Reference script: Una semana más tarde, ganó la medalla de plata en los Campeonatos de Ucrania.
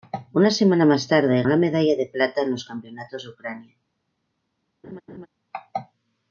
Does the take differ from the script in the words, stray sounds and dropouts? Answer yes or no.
yes